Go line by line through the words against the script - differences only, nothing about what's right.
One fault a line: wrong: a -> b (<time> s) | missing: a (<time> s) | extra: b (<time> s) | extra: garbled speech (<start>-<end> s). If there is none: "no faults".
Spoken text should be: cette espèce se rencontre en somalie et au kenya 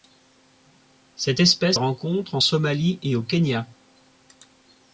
missing: se (1.8 s)